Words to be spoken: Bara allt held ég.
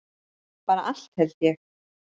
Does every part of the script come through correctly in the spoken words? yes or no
yes